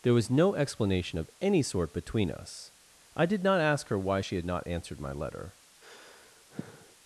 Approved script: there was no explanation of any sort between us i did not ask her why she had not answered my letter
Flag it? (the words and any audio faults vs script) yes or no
yes